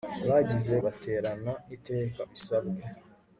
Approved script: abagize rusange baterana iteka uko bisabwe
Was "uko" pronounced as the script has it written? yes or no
no